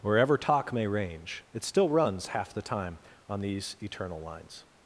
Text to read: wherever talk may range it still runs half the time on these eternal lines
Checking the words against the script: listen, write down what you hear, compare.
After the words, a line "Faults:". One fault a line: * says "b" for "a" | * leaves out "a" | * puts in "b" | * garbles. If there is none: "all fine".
wherever talk may range it still runs half the time on these eternal lines
Faults:
all fine